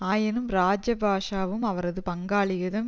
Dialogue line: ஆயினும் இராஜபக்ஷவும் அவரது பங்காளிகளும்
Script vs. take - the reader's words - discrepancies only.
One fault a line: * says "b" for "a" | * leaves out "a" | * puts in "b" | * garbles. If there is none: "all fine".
all fine